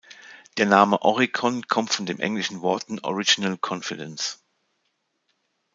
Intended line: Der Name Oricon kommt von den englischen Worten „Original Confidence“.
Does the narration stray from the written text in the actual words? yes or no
no